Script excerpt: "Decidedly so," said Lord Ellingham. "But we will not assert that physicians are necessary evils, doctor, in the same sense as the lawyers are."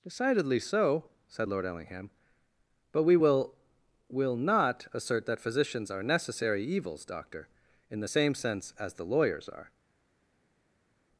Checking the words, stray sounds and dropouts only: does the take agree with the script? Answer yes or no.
no